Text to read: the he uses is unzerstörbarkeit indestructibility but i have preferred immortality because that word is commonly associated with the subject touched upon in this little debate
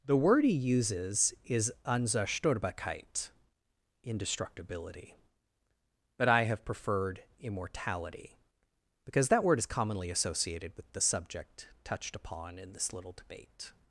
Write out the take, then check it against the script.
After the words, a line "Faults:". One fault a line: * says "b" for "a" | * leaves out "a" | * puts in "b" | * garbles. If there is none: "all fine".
the word he uses is unzerstörbarkeit indestructibility but i have preferred immortality because that word is commonly associated with the subject touched upon in this little debate
Faults:
* puts in "word"